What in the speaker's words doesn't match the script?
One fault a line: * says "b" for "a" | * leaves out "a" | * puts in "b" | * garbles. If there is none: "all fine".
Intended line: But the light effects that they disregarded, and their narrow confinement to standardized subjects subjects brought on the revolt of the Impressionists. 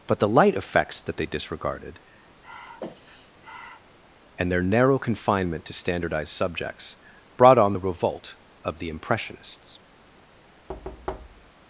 * leaves out "subjects"